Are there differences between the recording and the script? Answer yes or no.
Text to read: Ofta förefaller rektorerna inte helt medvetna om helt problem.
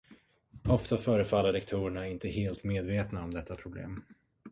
yes